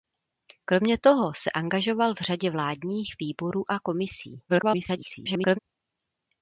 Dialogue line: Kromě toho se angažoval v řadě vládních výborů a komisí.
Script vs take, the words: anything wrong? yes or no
yes